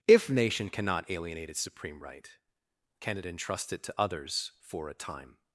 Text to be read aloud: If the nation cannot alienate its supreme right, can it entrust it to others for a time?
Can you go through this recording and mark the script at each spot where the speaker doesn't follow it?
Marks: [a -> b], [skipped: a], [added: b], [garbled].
If [skipped: the] nation cannot alienate its supreme right, can it entrust it to others for a time?